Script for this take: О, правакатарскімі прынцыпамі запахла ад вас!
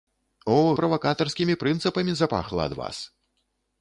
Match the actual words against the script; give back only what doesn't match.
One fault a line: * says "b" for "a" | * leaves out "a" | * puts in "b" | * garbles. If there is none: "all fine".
all fine